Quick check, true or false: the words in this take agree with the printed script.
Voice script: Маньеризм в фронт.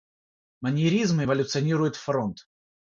false